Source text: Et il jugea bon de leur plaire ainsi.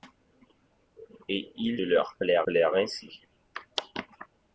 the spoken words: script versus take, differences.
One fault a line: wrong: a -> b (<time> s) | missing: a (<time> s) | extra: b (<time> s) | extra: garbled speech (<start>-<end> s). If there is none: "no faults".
missing: jugea bon (1.8 s)
extra: plaire (2.4 s)